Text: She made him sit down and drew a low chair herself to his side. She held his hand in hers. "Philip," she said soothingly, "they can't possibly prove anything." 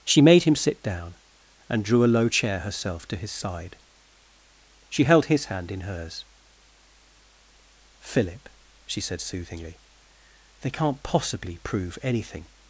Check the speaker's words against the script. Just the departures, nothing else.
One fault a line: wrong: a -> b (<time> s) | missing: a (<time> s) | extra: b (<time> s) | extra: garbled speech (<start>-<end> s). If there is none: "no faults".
no faults